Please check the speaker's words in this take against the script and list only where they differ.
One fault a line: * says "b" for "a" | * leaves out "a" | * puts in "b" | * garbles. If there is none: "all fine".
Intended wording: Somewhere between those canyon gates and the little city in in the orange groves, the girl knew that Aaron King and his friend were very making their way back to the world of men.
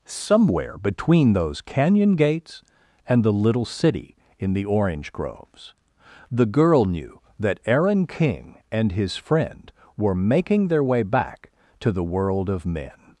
* leaves out "in"
* leaves out "very"